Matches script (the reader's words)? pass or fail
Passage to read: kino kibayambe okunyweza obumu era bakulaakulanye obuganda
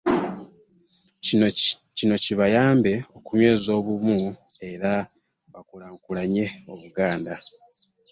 pass